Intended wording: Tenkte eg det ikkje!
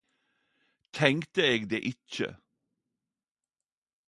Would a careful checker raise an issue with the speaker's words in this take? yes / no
no